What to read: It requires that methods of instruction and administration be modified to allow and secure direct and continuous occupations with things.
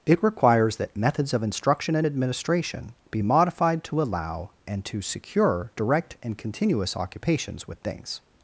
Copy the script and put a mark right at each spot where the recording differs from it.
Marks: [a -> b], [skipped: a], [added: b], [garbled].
It requires that methods of instruction and administration be modified to allow and [added: to] secure direct and continuous occupations with things.